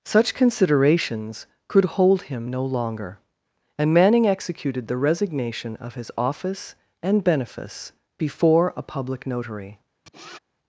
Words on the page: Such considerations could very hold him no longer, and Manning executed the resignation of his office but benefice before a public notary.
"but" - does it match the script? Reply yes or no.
no